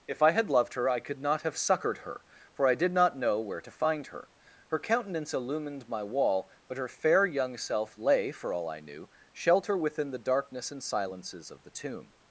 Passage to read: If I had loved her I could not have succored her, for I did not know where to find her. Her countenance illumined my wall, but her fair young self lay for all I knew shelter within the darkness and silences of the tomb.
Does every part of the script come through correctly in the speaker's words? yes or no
yes